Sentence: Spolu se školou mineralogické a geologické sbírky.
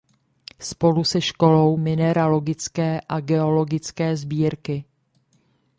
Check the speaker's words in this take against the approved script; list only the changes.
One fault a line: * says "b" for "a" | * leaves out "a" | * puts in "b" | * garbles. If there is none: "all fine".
all fine